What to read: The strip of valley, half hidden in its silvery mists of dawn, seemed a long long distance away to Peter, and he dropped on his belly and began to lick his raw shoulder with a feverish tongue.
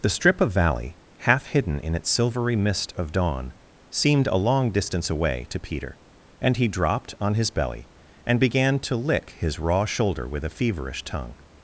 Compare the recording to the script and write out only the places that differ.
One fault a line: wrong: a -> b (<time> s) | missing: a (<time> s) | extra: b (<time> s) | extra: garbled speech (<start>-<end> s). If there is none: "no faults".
wrong: mists -> mist (2.6 s)
missing: long (4.7 s)